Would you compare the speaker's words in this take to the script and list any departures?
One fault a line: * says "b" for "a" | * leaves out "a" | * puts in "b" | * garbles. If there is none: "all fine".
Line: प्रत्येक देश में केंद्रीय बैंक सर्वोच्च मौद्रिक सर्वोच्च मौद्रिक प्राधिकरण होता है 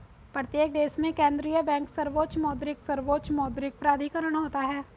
all fine